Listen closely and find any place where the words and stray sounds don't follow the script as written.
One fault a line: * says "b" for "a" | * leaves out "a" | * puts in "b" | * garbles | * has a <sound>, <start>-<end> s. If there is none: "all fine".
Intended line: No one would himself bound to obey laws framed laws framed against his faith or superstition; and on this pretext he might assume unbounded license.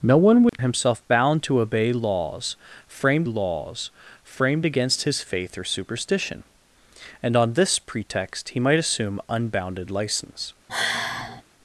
* has a dropout, 0.5-0.5 s
* has a sigh, 10.7-11.4 s